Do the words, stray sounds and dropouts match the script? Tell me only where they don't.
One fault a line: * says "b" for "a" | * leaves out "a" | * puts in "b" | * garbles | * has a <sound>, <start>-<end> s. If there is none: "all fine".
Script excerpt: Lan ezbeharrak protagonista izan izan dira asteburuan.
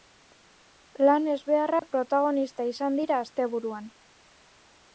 * has a dropout, 1.8-1.8 s
* leaves out "izan"